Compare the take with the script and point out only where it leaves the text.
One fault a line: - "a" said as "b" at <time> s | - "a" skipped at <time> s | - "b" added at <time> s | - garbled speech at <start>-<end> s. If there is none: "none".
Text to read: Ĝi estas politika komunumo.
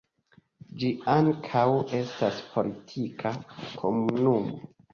- "ankaŭ" added at 1.1 s